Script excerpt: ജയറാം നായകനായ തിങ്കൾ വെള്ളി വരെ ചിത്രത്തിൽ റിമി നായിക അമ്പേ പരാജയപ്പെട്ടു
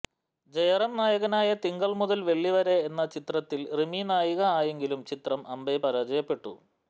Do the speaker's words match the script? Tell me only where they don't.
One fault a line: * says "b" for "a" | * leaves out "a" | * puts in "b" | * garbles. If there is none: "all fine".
* puts in "മുതൽ"
* puts in "എന്ന"
* puts in "ആയെങ്കിലും ചിത്രം"